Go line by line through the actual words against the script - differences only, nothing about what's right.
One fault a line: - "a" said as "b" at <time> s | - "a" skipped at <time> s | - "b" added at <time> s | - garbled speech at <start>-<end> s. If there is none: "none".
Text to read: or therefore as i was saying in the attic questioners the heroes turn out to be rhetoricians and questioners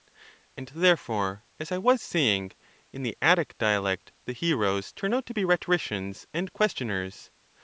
- "or" said as "and" at 0.6 s
- "questioners" said as "dialect" at 3.6 s